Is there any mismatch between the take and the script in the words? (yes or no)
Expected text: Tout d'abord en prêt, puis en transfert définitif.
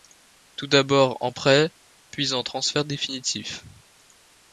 no